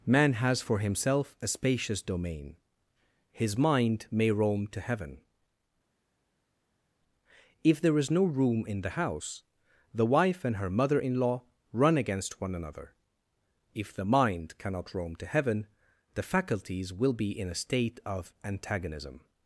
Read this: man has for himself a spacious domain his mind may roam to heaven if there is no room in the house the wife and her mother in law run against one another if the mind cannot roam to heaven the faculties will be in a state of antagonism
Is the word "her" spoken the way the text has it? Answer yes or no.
yes